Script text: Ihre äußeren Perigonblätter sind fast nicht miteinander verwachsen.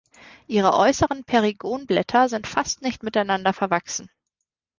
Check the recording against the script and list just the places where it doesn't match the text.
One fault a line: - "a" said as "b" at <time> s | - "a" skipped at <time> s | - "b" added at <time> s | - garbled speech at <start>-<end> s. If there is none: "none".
none